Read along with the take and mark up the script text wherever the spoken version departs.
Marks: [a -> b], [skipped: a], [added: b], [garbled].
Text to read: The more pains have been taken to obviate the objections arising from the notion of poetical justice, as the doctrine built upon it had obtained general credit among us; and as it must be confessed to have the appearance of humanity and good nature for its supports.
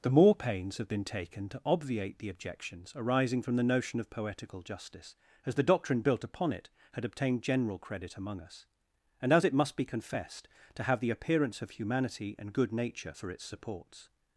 The more pains have been taken to obviate the objections arising from the notion of poetical justice, as the doctrine built upon it had obtained general credit among us; and as it must be confessed to have the appearance of humanity and good nature for its supports.